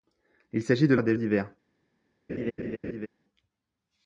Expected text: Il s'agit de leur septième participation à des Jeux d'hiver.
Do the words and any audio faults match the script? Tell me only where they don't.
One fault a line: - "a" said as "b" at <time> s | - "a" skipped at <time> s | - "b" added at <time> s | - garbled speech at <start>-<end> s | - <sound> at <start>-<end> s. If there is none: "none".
- "leur septième participation" skipped at 0.9 s
- "Jeux" skipped at 1.2 s
- laugh at 2.3-3.1 s